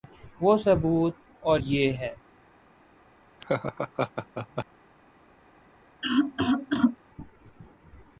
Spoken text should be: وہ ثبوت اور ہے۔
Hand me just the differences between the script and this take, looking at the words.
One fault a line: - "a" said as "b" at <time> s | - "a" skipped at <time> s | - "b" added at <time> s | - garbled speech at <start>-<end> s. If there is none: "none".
- "یہ" added at 1.5 s